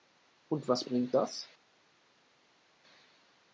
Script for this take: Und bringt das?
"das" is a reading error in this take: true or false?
false